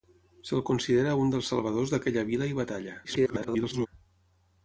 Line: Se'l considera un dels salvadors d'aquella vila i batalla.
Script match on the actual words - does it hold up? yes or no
no